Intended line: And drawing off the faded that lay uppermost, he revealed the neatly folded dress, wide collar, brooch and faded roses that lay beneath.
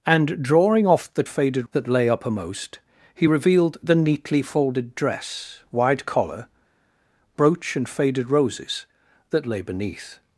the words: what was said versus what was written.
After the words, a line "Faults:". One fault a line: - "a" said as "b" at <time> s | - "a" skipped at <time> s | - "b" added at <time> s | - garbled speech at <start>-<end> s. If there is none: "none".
And drawing off the faded that lay uppermost, he revealed the neatly folded dress, wide collar, brooch and faded roses that lay beneath.
Faults:
none